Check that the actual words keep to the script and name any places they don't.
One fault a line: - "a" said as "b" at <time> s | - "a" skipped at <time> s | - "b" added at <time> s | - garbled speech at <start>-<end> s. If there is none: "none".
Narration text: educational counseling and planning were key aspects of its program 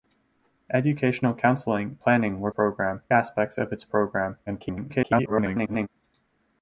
- "and" skipped at 2.0 s
- "key" said as "program" at 2.5 s
- garbled speech at 4.5-5.9 s